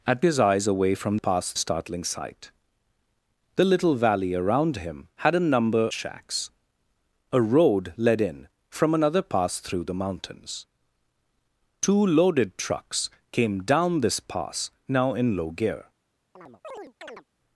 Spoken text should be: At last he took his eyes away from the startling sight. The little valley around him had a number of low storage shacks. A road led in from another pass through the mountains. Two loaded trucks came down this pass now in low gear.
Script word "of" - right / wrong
wrong